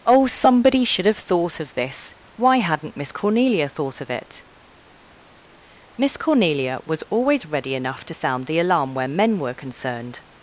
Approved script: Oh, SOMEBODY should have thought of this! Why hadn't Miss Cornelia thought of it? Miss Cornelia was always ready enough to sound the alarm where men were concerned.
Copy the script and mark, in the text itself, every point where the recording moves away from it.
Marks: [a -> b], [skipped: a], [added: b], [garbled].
Oh, SOMEBODY should have thought of this! Why hadn't Miss Cornelia thought of it? Miss Cornelia was always ready enough to sound the alarm where men were concerned.